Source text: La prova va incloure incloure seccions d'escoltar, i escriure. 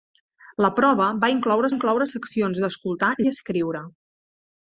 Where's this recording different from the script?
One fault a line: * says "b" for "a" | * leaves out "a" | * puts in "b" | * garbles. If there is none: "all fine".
all fine